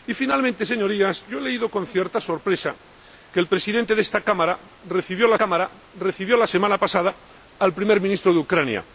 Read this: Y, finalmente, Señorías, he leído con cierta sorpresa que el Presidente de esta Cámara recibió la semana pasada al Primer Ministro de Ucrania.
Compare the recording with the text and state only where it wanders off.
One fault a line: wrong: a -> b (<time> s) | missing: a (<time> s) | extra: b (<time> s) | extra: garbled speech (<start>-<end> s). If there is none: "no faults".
extra: Cámara recibió la (5.3 s)